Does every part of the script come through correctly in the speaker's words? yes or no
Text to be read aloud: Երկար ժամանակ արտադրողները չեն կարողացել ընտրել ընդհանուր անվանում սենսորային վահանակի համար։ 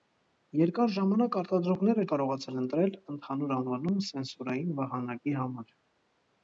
no